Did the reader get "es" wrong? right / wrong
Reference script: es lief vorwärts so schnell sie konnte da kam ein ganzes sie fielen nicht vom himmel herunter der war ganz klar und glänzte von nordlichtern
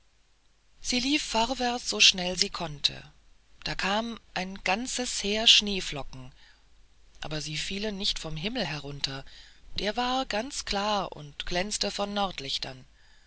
wrong